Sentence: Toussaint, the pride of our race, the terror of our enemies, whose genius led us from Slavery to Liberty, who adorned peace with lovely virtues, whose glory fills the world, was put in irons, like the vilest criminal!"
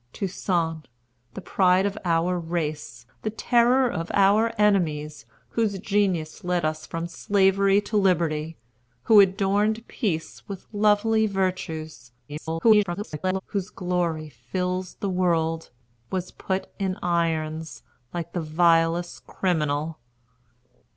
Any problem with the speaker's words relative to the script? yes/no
yes